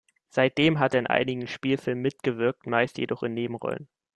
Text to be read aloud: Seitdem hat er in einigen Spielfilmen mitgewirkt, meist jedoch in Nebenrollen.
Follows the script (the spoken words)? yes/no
yes